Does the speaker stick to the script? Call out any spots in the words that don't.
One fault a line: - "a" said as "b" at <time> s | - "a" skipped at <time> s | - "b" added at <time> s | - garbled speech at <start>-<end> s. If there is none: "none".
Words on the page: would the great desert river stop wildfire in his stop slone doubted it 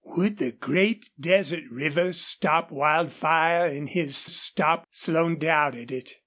none